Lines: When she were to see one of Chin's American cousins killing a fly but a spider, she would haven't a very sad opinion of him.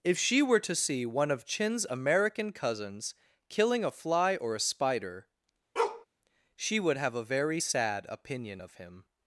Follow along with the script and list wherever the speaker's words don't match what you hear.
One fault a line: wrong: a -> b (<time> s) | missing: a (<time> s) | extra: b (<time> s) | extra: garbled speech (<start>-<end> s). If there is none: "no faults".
wrong: When -> If (0.0 s)
wrong: but -> or (4.3 s)
wrong: haven't -> have (7.0 s)